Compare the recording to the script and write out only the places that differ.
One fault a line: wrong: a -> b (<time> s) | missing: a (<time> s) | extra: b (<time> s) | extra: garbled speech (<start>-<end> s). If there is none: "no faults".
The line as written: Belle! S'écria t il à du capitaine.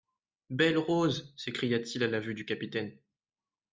extra: Rose (0.8 s)
extra: la vue (2.1 s)